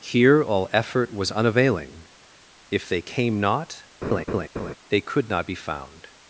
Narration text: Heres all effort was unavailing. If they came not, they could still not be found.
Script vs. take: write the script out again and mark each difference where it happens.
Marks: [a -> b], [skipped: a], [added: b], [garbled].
[Heres -> Here] all effort was unavailing. If they came not, they could [skipped: still] not be found.